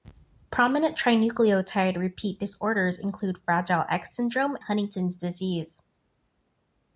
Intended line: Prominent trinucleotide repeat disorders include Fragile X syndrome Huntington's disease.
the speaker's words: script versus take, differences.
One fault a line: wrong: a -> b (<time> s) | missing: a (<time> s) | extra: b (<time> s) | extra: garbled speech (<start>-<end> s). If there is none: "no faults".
no faults